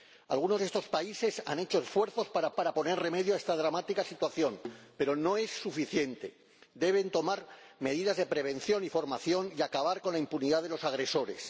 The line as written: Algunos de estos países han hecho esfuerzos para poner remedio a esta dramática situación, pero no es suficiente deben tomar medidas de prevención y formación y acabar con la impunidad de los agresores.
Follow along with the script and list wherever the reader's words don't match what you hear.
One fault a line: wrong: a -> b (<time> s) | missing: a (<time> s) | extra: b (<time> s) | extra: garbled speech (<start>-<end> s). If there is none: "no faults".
extra: para (2.5 s)